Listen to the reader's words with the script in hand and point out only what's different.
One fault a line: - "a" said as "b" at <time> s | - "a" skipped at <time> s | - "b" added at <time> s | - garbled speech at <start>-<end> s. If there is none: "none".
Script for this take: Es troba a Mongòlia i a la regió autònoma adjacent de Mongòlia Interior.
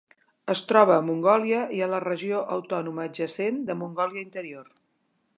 none